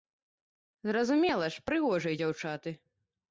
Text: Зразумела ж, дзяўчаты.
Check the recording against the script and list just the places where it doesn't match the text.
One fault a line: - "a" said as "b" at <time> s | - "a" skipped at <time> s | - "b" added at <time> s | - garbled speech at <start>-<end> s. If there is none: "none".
- "прыгожыя" added at 1.7 s